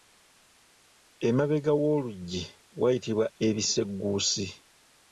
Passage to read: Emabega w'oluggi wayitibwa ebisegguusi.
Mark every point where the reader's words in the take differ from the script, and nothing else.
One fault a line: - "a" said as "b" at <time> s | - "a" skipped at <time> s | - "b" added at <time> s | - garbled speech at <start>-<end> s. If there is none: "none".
none